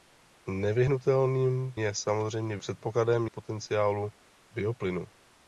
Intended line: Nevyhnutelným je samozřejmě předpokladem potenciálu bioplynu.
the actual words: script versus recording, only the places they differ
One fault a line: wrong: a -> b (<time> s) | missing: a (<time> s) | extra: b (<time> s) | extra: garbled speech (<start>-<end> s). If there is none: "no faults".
no faults